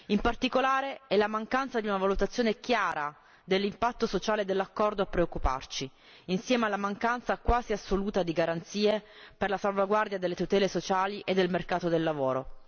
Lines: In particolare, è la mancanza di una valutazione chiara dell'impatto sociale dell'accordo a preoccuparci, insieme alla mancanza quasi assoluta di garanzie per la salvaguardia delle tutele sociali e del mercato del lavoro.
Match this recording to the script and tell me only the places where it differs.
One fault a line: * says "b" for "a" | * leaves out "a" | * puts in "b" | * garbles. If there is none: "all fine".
all fine